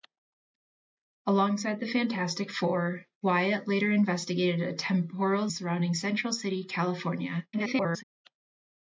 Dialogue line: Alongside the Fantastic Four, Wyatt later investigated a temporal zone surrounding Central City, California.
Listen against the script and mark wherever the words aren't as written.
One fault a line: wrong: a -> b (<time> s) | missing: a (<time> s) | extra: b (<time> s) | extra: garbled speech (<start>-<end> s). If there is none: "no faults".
missing: zone (5.5 s)
extra: garbled speech (7.5-8.0 s)